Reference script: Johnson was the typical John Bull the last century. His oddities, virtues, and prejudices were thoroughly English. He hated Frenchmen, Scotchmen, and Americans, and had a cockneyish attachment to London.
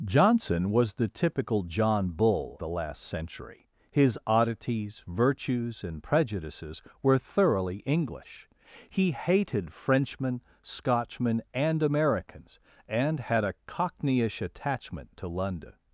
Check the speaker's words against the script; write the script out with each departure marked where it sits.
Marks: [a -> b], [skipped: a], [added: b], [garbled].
Johnson was the typical John Bull the last century. His oddities, virtues, and prejudices were thoroughly English. He hated Frenchmen, Scotchmen, and Americans, and had a cockneyish attachment to London.